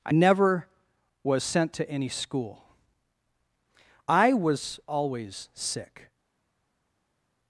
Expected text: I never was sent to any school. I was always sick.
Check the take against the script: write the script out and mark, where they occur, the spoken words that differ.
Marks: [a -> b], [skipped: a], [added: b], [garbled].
I never was sent to any school. I was always sick.